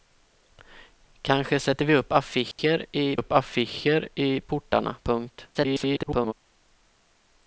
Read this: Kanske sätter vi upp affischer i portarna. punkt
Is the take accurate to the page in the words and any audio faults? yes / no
no